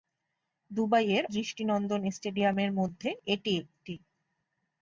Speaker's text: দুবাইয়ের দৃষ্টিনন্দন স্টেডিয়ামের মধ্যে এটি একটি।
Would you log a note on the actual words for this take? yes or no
no